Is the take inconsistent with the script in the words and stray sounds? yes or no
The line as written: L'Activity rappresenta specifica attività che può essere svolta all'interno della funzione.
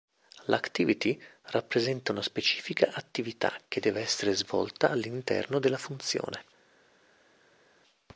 yes